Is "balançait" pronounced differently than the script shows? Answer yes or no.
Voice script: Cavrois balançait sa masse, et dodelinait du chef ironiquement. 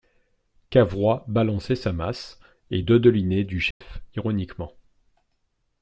no